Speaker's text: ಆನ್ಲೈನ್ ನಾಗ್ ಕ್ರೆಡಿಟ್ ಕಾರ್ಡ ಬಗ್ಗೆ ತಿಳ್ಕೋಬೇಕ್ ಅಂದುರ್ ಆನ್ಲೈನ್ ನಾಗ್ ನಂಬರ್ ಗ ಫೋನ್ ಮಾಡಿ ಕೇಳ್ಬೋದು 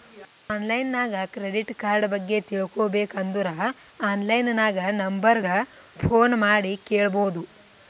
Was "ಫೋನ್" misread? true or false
false